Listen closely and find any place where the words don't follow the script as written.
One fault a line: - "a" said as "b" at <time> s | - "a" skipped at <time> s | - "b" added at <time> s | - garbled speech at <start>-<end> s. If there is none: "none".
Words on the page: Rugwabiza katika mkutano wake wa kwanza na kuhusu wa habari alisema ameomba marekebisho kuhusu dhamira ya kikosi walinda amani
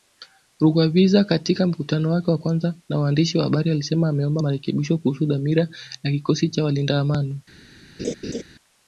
- "kuhusu" said as "waandishi" at 3.0 s
- "cha" added at 6.5 s